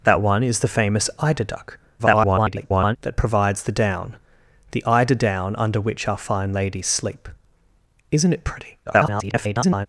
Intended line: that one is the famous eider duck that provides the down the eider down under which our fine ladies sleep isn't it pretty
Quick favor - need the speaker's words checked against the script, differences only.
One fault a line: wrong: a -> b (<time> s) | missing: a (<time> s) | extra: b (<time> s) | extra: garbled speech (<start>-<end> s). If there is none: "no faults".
extra: garbled speech (2.0-3.0 s)
extra: garbled speech (8.9-9.9 s)